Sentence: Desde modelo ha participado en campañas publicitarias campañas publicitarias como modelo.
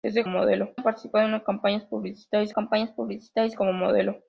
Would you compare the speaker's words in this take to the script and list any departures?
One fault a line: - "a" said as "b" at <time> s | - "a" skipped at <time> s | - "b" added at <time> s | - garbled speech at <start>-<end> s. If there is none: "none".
none